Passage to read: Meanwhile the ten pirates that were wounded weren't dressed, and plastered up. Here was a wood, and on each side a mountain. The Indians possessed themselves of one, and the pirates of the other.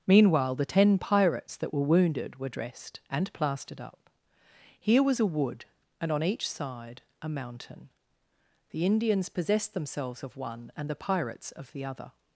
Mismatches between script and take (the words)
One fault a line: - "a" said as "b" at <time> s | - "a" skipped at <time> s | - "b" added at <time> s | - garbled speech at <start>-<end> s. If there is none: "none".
- "weren't" said as "were" at 2.4 s